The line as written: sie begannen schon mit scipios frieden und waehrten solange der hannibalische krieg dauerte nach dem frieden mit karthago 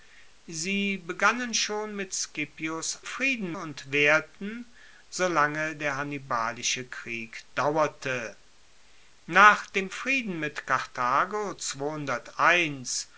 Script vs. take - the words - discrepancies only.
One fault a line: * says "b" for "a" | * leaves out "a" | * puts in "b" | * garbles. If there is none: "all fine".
all fine